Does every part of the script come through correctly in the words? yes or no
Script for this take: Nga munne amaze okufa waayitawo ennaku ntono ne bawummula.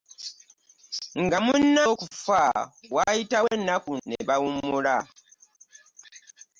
no